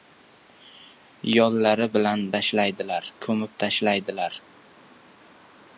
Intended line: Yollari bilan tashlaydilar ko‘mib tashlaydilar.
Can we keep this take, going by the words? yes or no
yes